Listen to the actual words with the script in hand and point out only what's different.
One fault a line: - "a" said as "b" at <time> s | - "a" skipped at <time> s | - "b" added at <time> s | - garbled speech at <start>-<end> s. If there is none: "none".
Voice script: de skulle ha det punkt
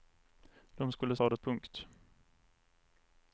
none